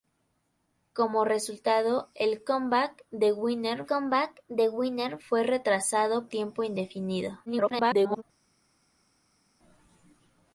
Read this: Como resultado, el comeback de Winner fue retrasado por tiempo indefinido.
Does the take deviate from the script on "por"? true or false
true